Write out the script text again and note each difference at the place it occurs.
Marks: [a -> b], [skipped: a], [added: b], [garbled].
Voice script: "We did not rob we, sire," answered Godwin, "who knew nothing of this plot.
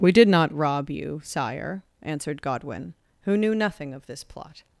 "We did not rob [we, -> you] sire," answered Godwin, "who knew nothing of this plot.